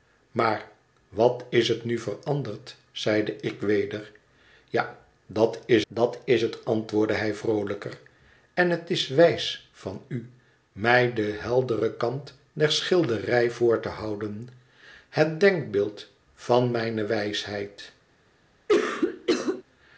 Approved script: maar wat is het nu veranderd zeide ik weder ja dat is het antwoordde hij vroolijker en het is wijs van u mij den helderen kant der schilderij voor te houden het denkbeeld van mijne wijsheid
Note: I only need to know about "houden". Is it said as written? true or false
true